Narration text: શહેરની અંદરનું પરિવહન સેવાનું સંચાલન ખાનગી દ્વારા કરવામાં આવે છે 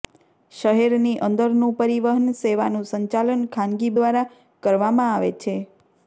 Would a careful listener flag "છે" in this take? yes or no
no